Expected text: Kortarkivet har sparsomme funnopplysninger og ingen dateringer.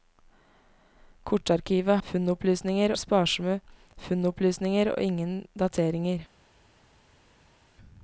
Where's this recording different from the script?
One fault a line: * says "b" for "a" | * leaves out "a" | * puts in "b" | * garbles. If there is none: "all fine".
* says "funnopplysninger" for "har"